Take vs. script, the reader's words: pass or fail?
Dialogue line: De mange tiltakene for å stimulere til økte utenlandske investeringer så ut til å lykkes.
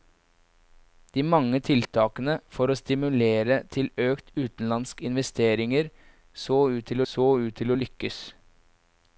fail